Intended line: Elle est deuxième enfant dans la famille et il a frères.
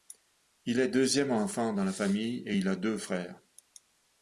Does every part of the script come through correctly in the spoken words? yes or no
no